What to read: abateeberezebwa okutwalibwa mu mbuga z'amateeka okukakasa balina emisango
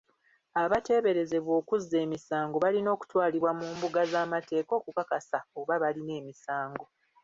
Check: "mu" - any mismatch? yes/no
no